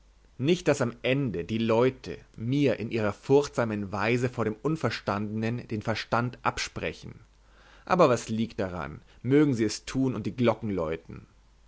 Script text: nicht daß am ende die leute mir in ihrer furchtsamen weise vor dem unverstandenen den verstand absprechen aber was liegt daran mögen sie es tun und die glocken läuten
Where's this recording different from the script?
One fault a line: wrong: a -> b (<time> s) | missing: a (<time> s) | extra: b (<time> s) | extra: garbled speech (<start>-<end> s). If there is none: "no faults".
no faults